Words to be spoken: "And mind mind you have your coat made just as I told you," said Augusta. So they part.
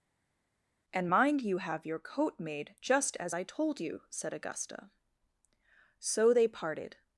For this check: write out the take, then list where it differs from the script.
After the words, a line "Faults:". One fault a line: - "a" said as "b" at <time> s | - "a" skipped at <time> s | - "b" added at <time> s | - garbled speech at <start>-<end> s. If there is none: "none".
"And mind you have your coat made just as I told you," said Augusta. So they parted.
Faults:
- "mind" skipped at 1.4 s
- "part" said as "parted" at 6.5 s